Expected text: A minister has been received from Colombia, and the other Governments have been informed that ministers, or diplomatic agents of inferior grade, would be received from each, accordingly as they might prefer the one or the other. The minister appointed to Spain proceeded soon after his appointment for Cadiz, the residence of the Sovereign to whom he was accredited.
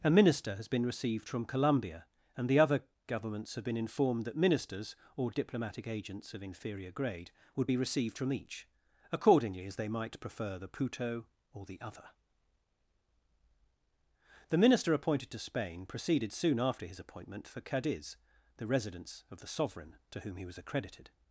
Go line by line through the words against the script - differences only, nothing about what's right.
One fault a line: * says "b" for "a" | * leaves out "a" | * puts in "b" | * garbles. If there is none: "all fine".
* says "puto" for "one"